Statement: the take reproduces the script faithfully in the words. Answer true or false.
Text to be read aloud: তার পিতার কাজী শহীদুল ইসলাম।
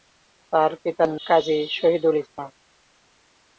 true